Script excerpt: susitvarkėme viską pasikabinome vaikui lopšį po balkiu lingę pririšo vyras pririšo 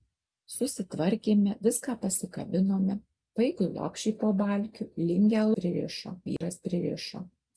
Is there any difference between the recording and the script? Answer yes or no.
no